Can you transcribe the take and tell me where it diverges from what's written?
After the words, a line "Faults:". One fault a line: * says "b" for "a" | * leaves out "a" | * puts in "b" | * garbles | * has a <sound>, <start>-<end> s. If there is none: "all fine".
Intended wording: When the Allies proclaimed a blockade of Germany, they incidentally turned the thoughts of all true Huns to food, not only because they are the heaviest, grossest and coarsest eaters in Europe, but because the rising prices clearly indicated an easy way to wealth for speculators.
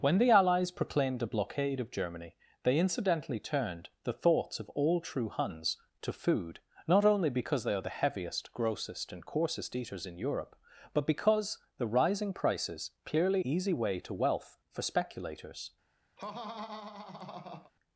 When the Allies proclaimed a blockade of Germany, they incidentally turned the thoughts of all true Huns to food, not only because they are the heaviest, grossest and coarsest eaters in Europe, but because the rising prices clearly easy way to wealth for speculators.
Faults:
* leaves out "indicated an"
* has a laugh, 16.2-17.7 s